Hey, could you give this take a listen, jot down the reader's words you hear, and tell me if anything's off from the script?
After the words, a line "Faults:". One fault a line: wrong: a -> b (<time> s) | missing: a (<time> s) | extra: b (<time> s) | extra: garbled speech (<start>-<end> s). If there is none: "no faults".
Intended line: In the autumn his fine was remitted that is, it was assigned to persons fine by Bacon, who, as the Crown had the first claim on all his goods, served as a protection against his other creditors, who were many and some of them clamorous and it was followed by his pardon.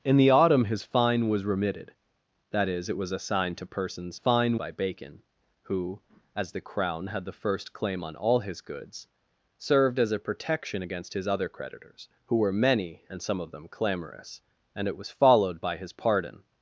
In the autumn his fine was remitted that is, it was assigned to persons fine by Bacon, who, as the Crown had the first claim on all his goods, served as a protection against his other creditors, who were many and some of them clamorous and it was followed by his pardon.
Faults:
no faults